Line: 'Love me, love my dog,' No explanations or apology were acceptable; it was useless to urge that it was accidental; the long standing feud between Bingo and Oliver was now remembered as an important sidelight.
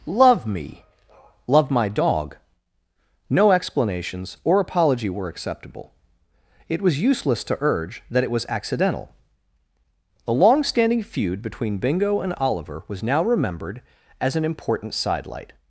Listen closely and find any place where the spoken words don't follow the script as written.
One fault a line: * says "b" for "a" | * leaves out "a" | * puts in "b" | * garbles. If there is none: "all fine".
all fine